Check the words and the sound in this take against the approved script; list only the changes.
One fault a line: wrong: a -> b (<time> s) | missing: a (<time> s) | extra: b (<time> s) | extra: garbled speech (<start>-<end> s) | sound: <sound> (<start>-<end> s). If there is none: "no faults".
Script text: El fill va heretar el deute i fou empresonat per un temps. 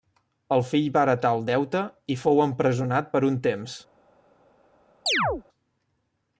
sound: chirp (5.1-5.4 s)